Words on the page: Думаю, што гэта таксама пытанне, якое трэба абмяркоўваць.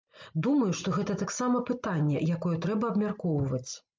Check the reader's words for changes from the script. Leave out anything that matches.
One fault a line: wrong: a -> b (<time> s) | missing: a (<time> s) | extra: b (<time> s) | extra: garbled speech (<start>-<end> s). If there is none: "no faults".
no faults